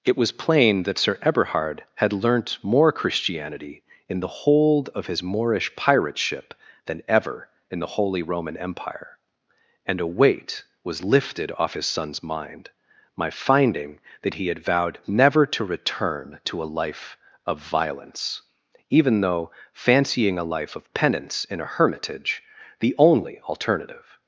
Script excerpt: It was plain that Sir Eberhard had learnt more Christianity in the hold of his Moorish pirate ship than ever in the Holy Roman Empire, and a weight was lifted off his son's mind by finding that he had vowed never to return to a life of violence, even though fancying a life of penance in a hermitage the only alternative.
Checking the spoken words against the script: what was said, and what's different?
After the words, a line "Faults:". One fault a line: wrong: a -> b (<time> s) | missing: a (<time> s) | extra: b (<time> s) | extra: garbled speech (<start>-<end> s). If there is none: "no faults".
It was plain that Sir Eberhard had learnt more Christianity in the hold of his Moorish pirate ship than ever in the Holy Roman Empire, and a weight was lifted off his son's mind my finding that he had vowed never to return to a life of violence, even though fancying a life of penance in a hermitage the only alternative.
Faults:
wrong: by -> my (13.2 s)